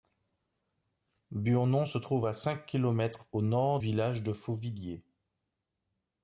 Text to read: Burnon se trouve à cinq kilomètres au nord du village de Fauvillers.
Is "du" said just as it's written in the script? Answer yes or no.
no